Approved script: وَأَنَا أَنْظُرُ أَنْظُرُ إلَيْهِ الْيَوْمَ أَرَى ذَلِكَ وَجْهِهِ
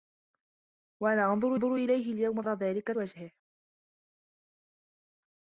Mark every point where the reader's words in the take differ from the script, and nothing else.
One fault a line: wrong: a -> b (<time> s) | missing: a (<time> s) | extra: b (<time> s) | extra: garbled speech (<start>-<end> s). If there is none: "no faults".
no faults